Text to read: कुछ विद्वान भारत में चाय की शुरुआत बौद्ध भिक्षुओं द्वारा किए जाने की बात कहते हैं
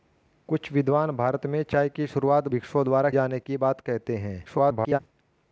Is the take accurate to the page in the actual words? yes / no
no